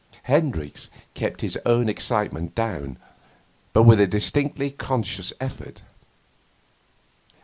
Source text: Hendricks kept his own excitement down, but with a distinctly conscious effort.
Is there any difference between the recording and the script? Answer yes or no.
no